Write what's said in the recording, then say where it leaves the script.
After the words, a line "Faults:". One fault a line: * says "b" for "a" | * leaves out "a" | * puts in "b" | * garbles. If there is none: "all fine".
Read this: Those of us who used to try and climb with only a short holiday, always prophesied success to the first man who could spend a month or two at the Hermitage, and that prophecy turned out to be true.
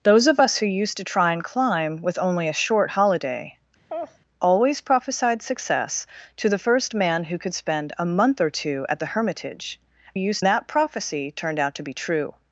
Those of us who used to try and climb with only a short holiday, always prophesied success to the first man who could spend a month or two at the Hermitage, used that prophecy turned out to be true.
Faults:
* says "used" for "and"